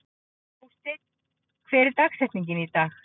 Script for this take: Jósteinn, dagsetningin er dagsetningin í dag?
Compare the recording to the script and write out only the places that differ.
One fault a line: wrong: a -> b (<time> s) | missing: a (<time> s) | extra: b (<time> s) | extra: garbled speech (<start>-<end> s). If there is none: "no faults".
wrong: dagsetningin -> hver (1.7 s)